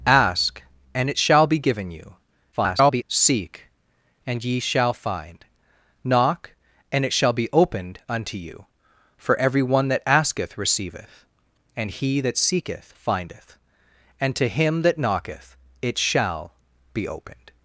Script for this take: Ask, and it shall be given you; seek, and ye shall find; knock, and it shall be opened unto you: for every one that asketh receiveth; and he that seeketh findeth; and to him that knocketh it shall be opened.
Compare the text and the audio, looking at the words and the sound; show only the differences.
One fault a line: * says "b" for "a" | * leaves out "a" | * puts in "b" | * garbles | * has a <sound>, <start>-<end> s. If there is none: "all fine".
* garbles